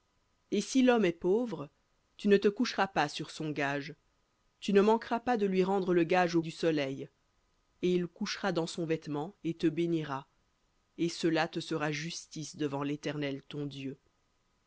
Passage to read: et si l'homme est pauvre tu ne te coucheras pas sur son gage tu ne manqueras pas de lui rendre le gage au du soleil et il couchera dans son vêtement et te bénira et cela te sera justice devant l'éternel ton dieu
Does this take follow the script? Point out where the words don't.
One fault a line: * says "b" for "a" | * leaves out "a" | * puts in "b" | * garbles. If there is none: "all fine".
all fine